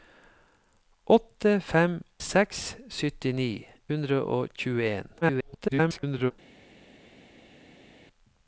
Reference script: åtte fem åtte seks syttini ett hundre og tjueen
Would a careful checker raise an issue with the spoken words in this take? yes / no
yes